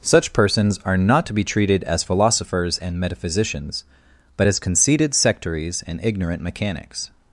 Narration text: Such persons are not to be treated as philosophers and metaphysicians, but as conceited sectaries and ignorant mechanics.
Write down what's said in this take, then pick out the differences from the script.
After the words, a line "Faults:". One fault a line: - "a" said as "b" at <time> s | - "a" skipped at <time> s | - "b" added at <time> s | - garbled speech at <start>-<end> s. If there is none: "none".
Such persons are not to be treated as philosophers and metaphysicians, but as conceited sectaries and ignorant mechanics.
Faults:
none